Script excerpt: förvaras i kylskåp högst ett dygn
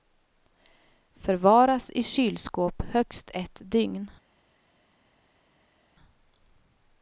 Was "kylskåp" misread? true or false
false